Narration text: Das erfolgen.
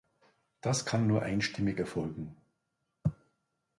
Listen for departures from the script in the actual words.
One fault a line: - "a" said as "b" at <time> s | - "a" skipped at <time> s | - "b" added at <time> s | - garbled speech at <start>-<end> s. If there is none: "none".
- "kann nur einstimmig" added at 0.9 s